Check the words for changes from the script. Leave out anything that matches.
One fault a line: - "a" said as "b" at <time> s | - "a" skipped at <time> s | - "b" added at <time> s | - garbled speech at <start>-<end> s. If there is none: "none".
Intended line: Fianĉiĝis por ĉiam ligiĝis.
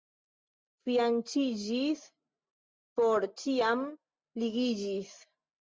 none